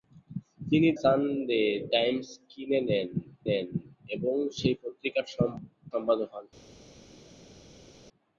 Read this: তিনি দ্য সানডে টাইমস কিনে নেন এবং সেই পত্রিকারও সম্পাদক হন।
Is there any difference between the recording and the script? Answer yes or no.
yes